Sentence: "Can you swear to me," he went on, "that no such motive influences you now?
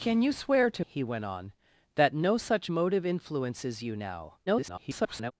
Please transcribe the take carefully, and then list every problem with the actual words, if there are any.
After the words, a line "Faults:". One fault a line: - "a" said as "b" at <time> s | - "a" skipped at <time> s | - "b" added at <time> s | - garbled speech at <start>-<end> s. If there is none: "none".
"Can you swear to," he went on, "that no such motive influences you now? [garbled]
Faults:
- "me" skipped at 0.8 s
- garbled speech at 4.5-5.3 s